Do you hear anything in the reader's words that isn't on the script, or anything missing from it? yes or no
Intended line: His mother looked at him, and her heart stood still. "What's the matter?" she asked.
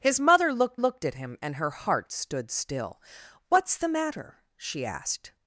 yes